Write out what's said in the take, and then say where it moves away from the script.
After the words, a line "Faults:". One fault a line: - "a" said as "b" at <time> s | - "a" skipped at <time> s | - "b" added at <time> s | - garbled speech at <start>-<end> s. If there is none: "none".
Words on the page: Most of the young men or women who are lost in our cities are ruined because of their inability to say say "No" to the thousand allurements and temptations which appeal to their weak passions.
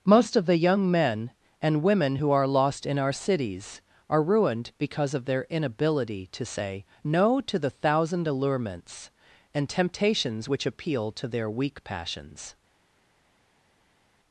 Most of the young men and women who are lost in our cities are ruined because of their inability to say "No" to the thousand allurements and temptations which appeal to their weak passions.
Faults:
- "or" said as "and" at 1.6 s
- "say" skipped at 6.8 s